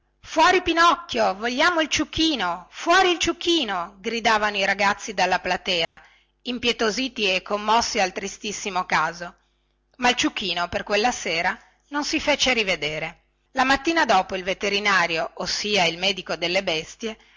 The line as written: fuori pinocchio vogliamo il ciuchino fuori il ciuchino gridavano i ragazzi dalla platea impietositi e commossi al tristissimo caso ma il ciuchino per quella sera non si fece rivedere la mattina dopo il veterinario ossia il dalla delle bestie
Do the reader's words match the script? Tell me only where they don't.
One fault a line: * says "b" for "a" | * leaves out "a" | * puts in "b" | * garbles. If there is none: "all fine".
* says "medico" for "dalla"